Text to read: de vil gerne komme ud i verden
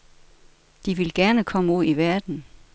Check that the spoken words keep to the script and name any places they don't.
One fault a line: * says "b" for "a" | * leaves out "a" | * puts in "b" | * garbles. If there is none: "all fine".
all fine